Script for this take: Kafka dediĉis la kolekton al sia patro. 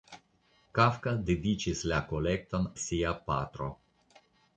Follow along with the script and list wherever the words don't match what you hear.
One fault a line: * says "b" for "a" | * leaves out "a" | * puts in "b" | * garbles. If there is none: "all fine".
* leaves out "al"